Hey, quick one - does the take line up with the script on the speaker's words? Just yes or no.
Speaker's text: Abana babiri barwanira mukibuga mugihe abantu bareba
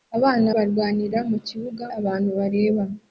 no